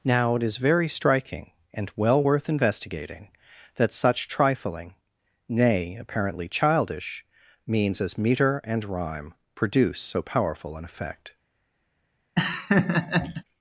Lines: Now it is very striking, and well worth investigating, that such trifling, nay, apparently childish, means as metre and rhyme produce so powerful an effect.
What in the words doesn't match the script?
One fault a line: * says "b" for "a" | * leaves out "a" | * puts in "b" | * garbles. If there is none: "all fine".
all fine